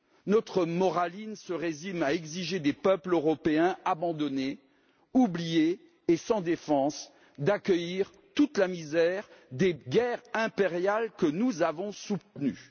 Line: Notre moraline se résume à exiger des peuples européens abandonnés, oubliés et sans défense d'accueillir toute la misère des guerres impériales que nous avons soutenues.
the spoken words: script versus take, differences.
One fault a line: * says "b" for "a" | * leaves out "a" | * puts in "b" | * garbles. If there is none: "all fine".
all fine